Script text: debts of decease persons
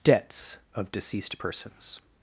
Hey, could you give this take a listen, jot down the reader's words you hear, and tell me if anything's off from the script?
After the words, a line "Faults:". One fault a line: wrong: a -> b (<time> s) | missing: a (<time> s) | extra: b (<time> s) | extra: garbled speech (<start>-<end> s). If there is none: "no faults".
debts of deceased persons
Faults:
wrong: decease -> deceased (0.9 s)